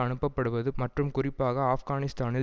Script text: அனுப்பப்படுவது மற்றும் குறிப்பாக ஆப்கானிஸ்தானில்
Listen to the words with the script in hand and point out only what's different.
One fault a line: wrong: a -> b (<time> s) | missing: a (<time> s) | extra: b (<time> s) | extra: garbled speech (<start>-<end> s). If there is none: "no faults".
no faults